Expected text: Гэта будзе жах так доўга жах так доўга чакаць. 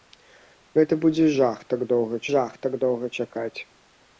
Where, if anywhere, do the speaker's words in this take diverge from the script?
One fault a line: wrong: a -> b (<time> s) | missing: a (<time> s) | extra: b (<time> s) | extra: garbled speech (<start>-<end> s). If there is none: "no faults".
no faults